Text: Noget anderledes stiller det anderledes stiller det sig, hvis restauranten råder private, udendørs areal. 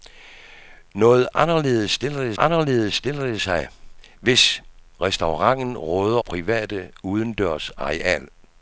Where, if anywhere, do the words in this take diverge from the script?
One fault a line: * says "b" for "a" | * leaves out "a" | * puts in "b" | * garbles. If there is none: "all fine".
all fine